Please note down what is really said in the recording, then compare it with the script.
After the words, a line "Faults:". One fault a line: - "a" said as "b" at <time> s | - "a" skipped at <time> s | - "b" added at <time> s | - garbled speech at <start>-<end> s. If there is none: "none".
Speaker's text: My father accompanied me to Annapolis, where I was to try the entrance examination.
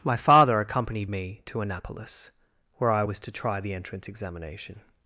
My father accompanied me to Annapolis, where I was to try the entrance examination.
Faults:
none